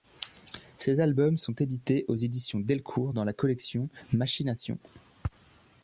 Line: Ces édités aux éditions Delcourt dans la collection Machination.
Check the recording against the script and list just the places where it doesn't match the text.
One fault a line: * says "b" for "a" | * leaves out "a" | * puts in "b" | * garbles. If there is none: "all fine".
* puts in "albums sont"